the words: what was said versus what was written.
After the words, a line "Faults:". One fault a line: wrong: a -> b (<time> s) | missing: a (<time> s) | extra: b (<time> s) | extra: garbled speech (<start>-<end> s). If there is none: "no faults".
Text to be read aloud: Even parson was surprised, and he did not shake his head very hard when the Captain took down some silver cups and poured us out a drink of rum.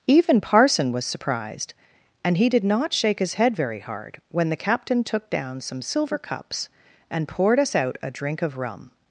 Even parson was surprised, and he did not shake his head very hard when the Captain took down some silver cups and poured us out a drink of rum.
Faults:
no faults